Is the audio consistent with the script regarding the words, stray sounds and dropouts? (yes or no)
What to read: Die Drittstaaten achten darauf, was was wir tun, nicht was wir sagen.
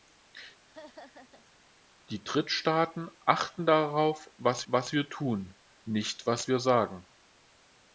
no